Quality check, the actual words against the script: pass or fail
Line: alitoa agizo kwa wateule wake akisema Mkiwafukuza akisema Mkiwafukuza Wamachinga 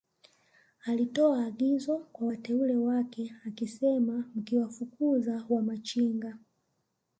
fail